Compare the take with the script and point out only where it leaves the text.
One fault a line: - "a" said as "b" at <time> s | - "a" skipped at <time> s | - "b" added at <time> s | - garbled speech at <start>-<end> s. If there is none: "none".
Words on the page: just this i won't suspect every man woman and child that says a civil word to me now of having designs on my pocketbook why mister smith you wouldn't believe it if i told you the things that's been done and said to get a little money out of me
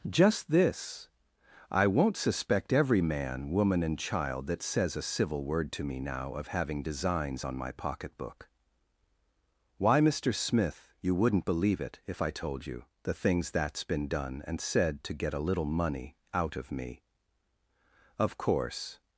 - "of course" added at 18.2 s